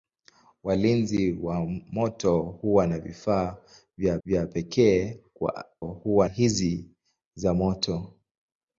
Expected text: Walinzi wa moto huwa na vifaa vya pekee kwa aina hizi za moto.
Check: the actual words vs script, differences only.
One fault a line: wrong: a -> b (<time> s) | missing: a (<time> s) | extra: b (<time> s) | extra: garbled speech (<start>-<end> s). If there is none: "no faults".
extra: vya (4.2 s)
wrong: aina -> huwa (5.8 s)